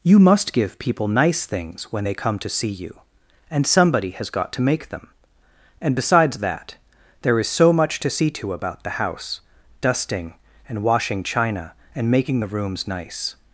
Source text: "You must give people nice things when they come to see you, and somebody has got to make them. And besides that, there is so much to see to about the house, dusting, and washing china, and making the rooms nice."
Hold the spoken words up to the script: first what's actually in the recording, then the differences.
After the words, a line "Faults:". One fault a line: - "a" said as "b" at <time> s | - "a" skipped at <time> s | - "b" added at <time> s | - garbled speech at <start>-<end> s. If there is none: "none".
"You must give people nice things when they come to see you, and somebody has got to make them. And besides that, there is so much to see to about the house, dusting, and washing china, and making the rooms nice."
Faults:
none